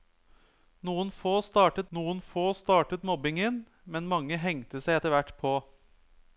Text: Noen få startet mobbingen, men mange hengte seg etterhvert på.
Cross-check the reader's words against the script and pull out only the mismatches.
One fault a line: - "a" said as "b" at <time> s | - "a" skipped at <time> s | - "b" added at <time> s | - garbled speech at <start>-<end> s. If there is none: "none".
- "noen få startet" added at 2.0 s